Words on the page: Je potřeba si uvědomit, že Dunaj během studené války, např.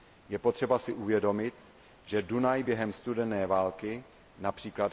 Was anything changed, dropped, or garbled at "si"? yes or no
no